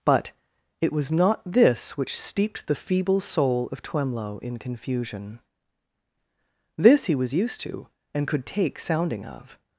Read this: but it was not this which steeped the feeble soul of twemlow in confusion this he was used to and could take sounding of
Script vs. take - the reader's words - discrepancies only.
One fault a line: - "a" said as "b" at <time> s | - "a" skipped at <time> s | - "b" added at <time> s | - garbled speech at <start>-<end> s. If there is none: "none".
none